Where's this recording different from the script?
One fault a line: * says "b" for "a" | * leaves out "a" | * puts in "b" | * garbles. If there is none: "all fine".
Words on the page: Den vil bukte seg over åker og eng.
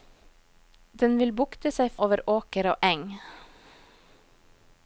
all fine